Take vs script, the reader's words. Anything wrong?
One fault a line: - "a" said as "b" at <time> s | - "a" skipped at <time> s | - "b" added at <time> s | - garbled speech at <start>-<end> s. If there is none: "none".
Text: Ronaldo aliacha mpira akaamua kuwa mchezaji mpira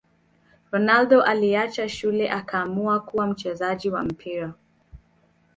- "mpira" said as "shule" at 1.9 s
- "wa" added at 3.9 s